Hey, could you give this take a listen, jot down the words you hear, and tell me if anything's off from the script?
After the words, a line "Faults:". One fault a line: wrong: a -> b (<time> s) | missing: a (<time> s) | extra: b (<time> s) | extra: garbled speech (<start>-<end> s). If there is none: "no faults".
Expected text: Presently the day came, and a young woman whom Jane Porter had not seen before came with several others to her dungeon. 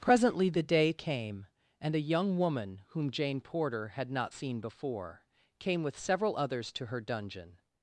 Presently the day came, and a young woman whom Jane Porter had not seen before came with several others to her dungeon.
Faults:
no faults